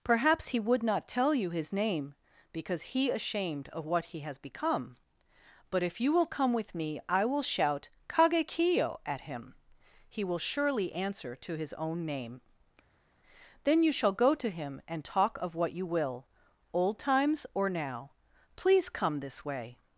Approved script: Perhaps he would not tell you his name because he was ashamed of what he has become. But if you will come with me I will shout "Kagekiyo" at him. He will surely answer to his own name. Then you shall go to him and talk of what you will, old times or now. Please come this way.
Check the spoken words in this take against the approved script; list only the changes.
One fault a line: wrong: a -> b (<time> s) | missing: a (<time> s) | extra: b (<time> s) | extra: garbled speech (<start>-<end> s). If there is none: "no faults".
missing: was (3.1 s)